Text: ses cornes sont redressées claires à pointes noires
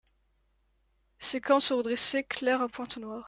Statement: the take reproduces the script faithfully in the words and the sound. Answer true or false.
true